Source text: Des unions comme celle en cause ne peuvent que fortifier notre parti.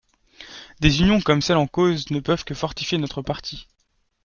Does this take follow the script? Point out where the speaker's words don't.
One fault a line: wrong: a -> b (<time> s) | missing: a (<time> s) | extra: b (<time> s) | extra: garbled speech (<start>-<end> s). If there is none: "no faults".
no faults